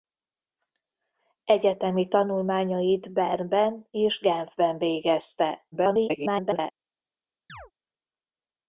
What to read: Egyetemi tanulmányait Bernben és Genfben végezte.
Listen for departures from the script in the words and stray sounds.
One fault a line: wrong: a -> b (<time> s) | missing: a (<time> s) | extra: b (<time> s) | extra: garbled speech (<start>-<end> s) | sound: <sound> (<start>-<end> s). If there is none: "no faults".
extra: garbled speech (5.7-6.7 s)
sound: chirp (7.5-7.7 s)